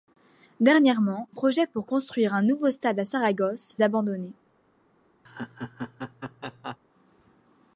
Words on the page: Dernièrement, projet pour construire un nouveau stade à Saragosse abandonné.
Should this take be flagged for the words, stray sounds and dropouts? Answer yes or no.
yes